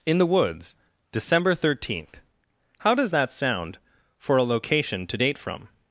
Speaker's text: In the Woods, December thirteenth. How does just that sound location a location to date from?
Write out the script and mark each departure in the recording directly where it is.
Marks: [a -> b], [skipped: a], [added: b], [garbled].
In the Woods, December thirteenth. How does [skipped: just] that sound [location -> for] a location to date from?